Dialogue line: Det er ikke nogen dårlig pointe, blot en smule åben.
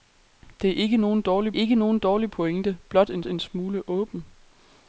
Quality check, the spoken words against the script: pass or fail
fail